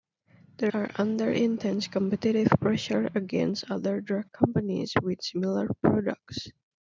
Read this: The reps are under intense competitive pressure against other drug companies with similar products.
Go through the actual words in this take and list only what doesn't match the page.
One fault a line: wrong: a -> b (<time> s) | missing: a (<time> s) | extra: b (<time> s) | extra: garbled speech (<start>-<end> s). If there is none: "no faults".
missing: reps (0.7 s)